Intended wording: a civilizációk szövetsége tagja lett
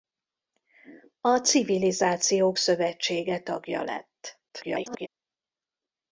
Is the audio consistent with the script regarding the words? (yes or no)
no